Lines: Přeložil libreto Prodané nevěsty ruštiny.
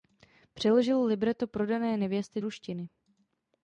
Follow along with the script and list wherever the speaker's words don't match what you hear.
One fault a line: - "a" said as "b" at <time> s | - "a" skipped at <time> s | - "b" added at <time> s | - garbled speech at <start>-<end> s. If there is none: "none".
none